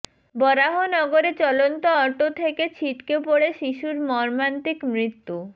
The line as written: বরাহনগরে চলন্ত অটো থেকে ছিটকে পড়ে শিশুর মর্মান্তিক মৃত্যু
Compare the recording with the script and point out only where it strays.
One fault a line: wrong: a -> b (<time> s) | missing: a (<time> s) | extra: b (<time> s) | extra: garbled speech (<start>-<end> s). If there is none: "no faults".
no faults